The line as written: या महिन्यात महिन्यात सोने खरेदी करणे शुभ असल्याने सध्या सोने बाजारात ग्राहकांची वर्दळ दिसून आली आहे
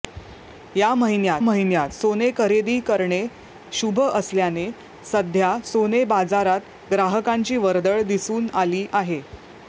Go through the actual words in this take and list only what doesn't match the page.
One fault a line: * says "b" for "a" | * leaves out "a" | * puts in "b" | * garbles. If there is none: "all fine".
all fine